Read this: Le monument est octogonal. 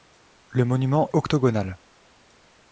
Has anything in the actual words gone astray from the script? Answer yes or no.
yes